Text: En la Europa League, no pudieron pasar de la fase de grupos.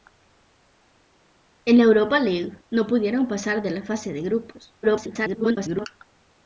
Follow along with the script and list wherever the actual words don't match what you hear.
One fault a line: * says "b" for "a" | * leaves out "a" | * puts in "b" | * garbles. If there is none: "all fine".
* garbles